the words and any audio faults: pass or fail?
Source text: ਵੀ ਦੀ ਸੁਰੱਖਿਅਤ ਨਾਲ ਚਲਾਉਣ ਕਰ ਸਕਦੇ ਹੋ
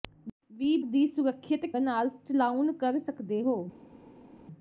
pass